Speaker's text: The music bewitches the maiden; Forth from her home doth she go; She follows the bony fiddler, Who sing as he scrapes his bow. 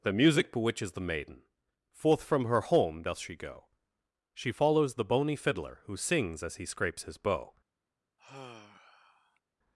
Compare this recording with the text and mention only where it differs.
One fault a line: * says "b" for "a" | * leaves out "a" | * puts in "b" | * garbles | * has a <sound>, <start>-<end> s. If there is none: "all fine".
* says "sings" for "sing"
* has a sigh, 8.2-9.4 s